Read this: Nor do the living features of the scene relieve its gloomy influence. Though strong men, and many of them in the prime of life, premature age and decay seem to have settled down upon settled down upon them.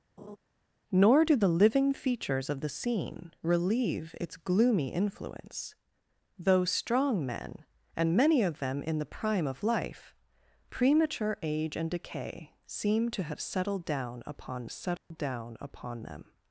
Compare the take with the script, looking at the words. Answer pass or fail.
pass